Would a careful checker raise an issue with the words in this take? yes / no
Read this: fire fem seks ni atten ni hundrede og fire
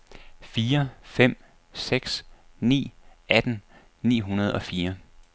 no